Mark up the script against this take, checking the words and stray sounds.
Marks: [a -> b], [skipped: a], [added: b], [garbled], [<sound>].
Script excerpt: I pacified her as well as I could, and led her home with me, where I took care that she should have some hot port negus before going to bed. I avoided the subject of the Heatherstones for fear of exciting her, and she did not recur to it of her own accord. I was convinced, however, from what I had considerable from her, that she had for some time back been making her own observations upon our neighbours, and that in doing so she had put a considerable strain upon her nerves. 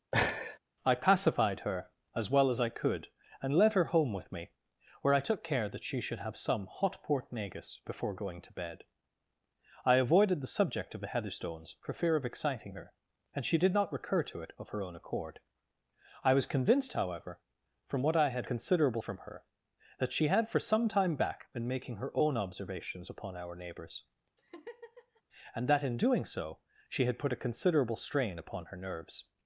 [laugh] I pacified her as well as I could, and led her home with me, where I took care that she should have some hot port negus before going to bed. I avoided the subject of the Heatherstones for fear of exciting her, and she did not recur to it of her own accord. I was convinced, however, from what I had considerable from her, that she had for some time back been making her own observations upon our neighbours, [laugh] and that in doing so she had put a considerable strain upon her nerves.